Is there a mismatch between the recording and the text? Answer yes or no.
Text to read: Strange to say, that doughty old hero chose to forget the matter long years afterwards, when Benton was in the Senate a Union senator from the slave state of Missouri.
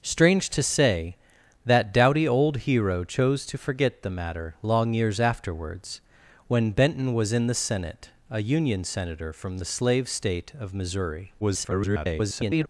yes